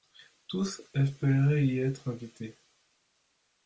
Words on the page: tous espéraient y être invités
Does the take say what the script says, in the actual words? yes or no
yes